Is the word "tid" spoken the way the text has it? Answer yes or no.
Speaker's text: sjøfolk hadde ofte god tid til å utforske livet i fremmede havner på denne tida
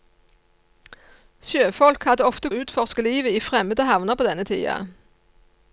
no